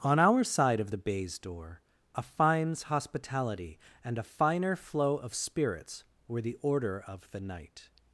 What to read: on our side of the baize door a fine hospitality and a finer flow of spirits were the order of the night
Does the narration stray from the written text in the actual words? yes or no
yes